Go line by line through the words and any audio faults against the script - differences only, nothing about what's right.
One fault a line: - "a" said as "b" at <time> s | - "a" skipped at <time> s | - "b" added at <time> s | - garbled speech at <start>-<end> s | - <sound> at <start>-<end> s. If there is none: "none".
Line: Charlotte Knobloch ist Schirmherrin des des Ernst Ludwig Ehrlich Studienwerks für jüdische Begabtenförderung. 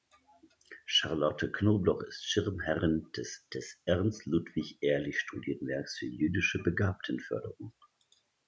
none